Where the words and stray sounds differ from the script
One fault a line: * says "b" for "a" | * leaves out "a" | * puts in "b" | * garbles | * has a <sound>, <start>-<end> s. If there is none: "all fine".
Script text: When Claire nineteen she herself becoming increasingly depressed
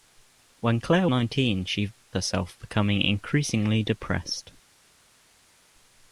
all fine